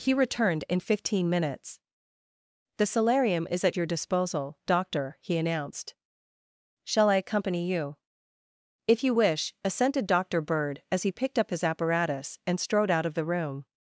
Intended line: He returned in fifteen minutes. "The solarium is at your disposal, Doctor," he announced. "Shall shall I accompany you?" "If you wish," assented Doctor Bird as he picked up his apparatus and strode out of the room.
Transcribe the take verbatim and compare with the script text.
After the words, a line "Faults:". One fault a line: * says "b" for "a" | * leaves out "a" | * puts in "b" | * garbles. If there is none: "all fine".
He returned in fifteen minutes. "The solarium is at your disposal, Doctor," he announced. "Shall I accompany you?" "If you wish," assented Doctor Bird as he picked up his apparatus and strode out of the room.
Faults:
* leaves out "shall"